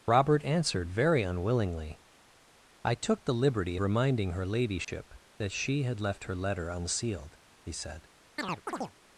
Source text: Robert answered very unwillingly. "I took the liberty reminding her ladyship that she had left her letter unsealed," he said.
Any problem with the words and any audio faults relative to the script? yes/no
yes